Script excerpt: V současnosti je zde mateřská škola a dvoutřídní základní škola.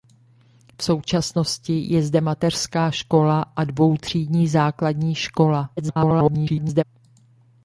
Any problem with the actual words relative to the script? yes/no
yes